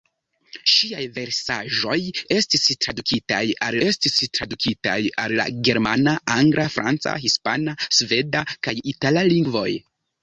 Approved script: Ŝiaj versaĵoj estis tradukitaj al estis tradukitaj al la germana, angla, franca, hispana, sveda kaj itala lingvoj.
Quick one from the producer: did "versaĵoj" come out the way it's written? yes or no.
yes